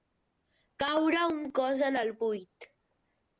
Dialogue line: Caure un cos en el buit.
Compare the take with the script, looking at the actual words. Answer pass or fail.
pass